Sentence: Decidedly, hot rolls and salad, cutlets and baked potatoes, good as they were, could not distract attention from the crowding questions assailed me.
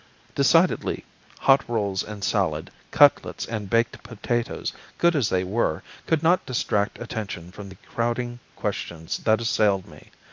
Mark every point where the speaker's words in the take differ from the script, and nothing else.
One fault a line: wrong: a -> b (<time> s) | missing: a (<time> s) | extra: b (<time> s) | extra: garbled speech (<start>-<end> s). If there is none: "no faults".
extra: that (9.3 s)